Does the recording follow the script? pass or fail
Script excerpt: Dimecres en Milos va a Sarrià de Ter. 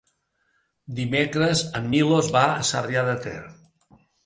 pass